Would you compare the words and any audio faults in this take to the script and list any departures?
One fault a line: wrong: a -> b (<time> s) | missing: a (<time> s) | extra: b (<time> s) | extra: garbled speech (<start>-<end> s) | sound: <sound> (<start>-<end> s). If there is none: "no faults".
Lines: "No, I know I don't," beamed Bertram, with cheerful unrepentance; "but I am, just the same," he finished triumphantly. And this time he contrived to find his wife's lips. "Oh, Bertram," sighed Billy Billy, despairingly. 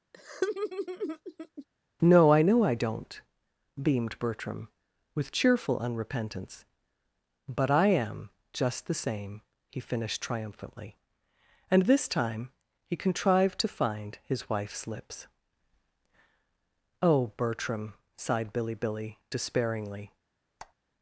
sound: laugh (0.1-1.7 s)
sound: squeak (20.6-20.7 s)